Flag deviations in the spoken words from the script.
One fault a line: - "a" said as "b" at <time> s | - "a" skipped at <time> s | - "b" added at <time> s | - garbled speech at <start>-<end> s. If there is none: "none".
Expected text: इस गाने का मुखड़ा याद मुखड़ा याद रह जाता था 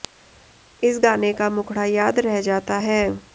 - "मुखड़ा याद" skipped at 2.2 s
- "था" said as "है" at 2.8 s